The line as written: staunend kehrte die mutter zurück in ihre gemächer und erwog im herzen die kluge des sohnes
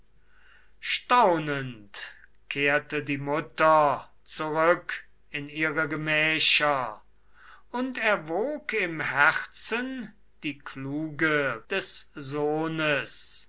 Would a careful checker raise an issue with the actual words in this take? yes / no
no